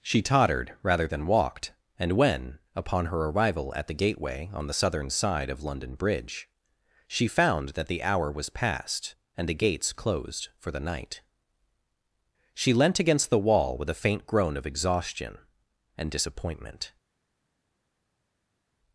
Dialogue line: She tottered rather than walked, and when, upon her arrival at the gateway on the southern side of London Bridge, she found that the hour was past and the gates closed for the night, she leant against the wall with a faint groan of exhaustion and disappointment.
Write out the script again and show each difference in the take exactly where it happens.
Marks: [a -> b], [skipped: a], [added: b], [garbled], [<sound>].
She tottered rather than walked, and when, upon her arrival at the gateway on the southern side of London Bridge, she found that the hour was past and the gates closed for the night, she leant against the wall with a faint groan of exhaustion and disappointment.